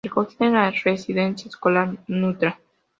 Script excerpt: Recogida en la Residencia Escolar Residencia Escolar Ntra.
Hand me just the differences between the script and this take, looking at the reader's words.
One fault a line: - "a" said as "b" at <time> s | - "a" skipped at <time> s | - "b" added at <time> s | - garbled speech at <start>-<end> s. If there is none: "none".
- "Residencia Escolar" skipped at 1.9 s